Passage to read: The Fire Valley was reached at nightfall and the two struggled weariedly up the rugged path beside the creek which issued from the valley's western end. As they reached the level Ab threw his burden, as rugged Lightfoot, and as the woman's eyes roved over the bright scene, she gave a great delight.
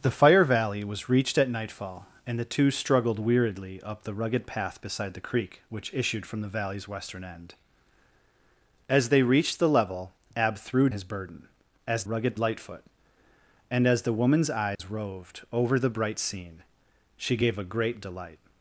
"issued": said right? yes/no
yes